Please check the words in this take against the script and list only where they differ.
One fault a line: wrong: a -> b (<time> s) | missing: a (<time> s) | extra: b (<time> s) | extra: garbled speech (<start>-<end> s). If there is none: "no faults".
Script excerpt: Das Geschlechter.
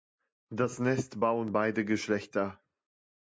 extra: Nest bauen beide (0.8 s)